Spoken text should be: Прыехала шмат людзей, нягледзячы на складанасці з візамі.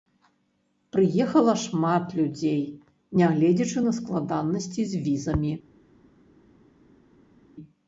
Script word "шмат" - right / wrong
right